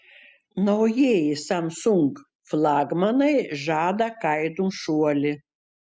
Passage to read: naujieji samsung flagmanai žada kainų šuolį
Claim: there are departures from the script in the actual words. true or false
false